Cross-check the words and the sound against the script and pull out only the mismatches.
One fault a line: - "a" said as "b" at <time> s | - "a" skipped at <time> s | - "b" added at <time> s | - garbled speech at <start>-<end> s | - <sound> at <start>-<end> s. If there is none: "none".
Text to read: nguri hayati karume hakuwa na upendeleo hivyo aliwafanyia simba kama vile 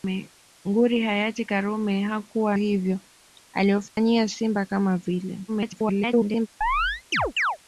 - "na upendeleo" skipped at 2.6 s
- dropout at 3.9-4.0 s
- garbled speech at 5.5-6.5 s
- chirp at 6.6-7.6 s